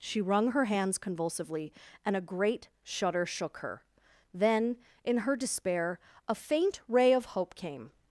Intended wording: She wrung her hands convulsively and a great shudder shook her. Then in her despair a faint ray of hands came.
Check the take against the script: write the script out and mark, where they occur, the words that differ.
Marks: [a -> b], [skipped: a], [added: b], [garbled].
She wrung her hands convulsively and a great shudder shook her. Then in her despair a faint ray of [hands -> hope] came.